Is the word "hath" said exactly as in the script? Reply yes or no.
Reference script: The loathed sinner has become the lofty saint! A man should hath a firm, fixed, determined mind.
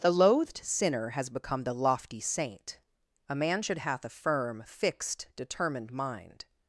yes